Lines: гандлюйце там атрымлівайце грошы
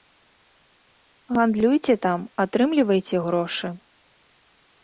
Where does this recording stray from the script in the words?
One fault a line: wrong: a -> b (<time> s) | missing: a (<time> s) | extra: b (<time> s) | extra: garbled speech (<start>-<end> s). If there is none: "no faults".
no faults